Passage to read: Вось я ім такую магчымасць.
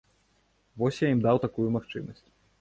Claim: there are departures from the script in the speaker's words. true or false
true